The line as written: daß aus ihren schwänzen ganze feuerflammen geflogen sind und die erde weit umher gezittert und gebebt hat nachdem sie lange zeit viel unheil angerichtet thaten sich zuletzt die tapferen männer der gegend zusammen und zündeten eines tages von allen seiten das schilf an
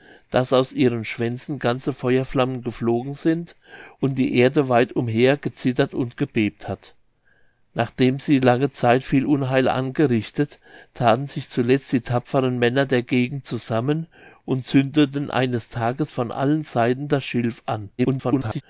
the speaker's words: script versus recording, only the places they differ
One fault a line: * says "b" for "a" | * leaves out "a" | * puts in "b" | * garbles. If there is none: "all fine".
* garbles